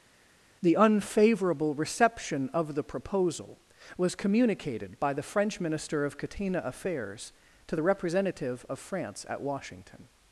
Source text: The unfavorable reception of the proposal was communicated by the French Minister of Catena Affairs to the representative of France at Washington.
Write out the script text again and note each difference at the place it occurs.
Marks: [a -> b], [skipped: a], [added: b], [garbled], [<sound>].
The unfavorable reception of the proposal was communicated by the French Minister of Catena Affairs to the representative of France at Washington.